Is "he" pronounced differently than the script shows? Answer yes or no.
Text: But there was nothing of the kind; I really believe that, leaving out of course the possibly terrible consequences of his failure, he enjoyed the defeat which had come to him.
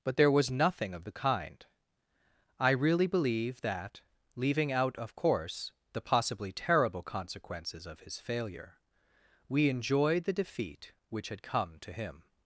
yes